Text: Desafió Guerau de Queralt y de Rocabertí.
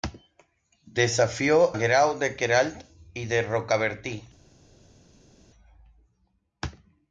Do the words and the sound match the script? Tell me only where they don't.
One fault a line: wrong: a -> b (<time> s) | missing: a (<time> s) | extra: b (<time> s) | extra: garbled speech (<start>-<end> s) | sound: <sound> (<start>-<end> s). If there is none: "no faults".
no faults